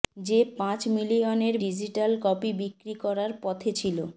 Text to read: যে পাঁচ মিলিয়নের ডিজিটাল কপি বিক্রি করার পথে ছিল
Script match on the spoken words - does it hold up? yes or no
yes